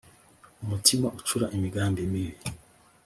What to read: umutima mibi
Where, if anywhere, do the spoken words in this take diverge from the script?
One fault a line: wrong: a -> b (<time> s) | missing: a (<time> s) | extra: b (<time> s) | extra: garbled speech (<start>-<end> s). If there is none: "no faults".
extra: ucura imigambi (1.2 s)